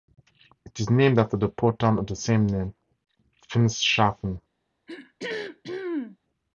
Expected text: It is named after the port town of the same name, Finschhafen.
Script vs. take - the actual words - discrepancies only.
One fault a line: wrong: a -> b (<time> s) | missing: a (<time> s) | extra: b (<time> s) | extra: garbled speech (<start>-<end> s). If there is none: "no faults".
no faults